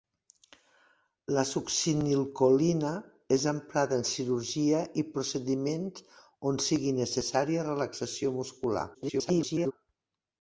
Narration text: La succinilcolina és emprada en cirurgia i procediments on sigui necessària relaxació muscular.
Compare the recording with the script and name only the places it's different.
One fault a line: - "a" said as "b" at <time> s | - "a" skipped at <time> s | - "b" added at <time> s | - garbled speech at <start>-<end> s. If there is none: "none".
- garbled speech at 8.9-9.7 s